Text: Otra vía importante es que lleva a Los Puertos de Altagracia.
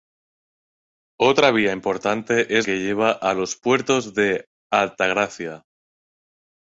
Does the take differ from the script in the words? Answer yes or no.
no